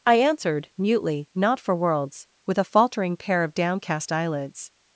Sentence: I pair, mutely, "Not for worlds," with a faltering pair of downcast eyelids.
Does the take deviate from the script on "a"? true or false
false